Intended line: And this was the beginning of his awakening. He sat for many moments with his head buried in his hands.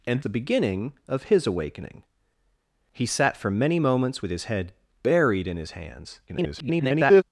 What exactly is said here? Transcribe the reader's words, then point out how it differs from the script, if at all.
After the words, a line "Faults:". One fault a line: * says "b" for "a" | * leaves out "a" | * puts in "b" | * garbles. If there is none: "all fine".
And the beginning of his awakening. He sat for many moments with his head buried in his hands. [garbled]
Faults:
* leaves out "this was"
* garbles